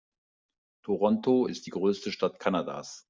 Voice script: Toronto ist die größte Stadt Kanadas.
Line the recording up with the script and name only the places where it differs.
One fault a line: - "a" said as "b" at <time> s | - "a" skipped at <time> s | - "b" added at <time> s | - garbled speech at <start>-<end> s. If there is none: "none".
none